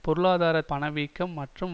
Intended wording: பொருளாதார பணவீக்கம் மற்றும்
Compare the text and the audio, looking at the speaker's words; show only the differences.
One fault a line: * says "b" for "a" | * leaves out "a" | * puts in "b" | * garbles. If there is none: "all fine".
all fine